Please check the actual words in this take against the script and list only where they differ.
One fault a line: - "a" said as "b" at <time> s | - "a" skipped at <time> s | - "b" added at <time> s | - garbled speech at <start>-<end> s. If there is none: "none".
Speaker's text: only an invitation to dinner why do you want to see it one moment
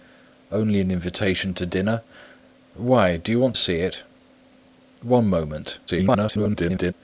- "to" skipped at 3.5 s
- garbled speech at 5.9-6.9 s